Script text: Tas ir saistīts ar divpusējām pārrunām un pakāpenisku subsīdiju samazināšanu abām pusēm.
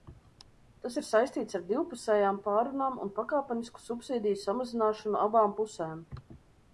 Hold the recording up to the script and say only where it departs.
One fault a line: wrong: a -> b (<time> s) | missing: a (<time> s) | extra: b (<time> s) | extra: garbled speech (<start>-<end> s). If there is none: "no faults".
no faults